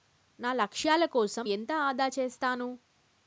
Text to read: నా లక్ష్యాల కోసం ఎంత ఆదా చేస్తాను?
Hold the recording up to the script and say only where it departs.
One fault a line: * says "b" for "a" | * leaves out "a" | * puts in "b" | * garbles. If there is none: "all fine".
all fine